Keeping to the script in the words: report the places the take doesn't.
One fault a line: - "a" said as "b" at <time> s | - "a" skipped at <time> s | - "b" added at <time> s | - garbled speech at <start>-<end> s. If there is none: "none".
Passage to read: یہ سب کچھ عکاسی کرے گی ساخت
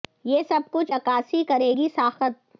none